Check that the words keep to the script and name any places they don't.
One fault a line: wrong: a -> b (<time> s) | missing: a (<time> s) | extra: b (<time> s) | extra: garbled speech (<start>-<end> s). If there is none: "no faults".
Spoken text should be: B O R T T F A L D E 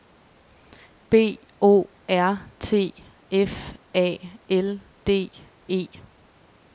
missing: T (3.0 s)